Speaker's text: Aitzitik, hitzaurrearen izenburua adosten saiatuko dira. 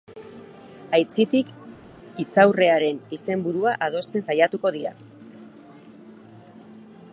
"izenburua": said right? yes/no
yes